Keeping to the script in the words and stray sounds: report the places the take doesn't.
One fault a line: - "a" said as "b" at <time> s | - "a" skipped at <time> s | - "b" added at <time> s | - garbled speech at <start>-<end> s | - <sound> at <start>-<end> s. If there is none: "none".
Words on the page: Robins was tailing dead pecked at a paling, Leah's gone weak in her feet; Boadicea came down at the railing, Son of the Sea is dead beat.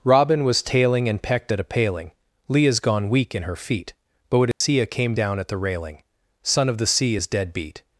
- "Robins" said as "Robin" at 0.0 s
- "dead" said as "and" at 1.1 s
- dropout at 4.5-4.6 s